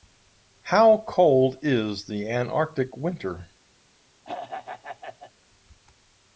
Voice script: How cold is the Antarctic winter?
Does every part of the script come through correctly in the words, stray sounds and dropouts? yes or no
no